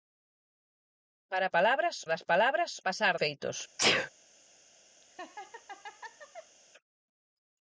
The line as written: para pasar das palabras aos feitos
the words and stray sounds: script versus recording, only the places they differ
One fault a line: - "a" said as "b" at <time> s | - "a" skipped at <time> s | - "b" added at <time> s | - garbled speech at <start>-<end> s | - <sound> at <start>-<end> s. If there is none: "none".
- "pasar" said as "palabras" at 1.6 s
- "aos" said as "pasar" at 2.9 s
- sneeze at 3.8-4.1 s
- laugh at 5.0-6.6 s